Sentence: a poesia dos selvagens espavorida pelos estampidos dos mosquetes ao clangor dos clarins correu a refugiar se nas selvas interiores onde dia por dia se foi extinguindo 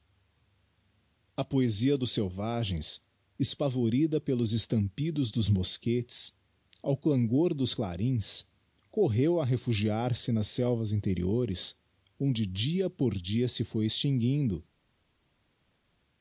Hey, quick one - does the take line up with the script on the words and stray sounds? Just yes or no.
yes